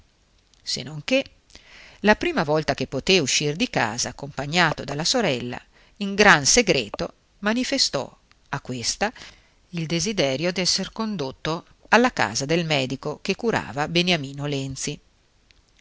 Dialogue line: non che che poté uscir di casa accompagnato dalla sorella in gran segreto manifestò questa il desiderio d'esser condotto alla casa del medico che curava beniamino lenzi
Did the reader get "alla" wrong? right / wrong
right